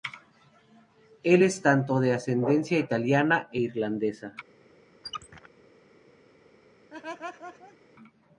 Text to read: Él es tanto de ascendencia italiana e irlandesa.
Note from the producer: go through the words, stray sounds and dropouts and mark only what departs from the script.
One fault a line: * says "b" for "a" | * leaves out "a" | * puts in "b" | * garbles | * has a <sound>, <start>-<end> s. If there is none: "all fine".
* has a squeak, 5.0-5.5 s
* has a laugh, 6.9-7.8 s